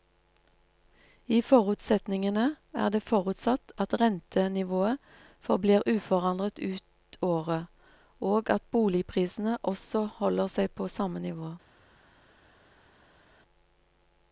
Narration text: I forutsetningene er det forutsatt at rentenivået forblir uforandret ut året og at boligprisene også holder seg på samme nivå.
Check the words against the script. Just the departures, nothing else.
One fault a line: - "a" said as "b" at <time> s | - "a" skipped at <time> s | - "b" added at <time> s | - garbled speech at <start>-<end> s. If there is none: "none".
none